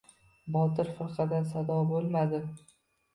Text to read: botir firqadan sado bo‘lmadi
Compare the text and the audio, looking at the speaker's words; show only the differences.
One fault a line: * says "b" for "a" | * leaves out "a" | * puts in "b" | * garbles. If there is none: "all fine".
all fine